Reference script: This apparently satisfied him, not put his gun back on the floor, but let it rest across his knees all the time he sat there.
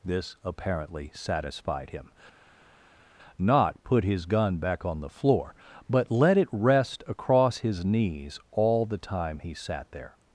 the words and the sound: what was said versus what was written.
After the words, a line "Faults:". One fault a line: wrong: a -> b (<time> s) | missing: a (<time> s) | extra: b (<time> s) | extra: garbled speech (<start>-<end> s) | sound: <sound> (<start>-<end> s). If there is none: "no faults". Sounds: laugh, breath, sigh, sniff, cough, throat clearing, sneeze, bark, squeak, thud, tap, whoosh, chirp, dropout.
This apparently satisfied him, not put his gun back on the floor, but let it rest across his knees all the time he sat there.
Faults:
no faults